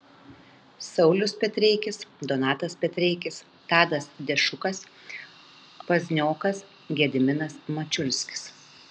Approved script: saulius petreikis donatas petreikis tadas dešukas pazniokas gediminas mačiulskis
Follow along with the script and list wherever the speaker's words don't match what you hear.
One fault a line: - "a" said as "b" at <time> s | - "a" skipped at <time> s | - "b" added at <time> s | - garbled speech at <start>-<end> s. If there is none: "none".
none